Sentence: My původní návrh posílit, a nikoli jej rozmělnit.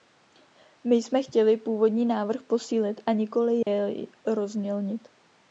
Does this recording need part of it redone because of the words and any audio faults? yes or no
yes